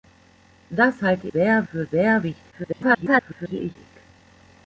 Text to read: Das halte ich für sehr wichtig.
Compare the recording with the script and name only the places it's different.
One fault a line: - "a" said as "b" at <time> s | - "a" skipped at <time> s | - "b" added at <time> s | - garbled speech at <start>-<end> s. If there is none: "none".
- "ich" said as "sehr" at 1.3 s
- garbled speech at 2.5-3.8 s